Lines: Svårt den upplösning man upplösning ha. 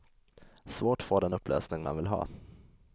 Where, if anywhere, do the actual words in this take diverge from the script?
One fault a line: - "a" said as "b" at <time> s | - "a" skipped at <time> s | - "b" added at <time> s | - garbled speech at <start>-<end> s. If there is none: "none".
- "få" added at 1.0 s
- "upplösning" said as "vill" at 2.0 s